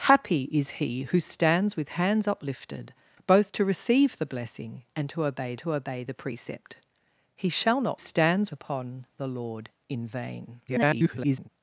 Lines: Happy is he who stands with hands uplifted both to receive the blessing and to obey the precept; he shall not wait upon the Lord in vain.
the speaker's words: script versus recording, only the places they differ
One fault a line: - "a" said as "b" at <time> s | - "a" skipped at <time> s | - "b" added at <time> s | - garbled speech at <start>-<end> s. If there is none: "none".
- "to obey" added at 5.6 s
- "wait" said as "stands" at 7.9 s
- garbled speech at 10.7-11.5 s